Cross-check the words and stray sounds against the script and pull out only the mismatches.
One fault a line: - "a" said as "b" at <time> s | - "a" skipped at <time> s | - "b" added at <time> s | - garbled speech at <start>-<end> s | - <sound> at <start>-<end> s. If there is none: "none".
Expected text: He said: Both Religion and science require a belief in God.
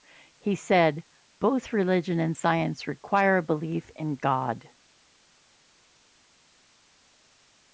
none